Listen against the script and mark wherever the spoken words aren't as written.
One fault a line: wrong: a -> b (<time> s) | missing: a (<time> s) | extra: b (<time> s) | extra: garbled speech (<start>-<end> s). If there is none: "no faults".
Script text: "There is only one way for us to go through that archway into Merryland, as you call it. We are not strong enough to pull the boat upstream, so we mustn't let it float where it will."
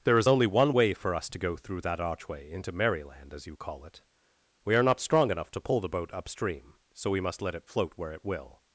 wrong: mustn't -> must (7.2 s)